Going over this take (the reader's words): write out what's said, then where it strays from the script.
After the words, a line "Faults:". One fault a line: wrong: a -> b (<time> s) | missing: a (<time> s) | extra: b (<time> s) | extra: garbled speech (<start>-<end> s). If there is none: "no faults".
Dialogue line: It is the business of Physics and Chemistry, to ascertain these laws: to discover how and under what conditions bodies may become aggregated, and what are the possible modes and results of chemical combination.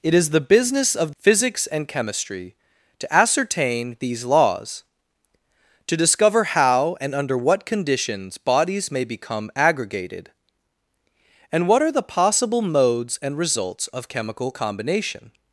It is the business of Physics and Chemistry, to ascertain these laws: to discover how and under what conditions bodies may become aggregated, and what are the possible modes and results of chemical combination.
Faults:
no faults